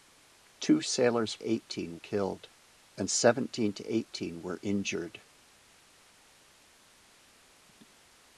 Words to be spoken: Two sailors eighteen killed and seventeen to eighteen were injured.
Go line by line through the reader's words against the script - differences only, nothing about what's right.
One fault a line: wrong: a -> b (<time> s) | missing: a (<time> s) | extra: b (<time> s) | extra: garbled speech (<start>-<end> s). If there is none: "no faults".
no faults